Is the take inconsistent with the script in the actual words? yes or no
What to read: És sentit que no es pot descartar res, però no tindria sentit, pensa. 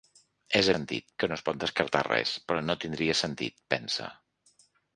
no